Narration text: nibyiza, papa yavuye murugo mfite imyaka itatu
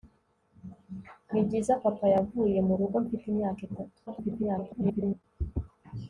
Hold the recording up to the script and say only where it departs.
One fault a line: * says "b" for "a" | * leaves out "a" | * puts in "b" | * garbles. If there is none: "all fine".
* garbles